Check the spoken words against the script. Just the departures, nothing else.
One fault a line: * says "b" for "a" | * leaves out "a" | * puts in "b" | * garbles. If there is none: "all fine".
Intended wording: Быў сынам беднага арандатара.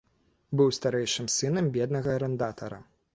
* puts in "старэйшым"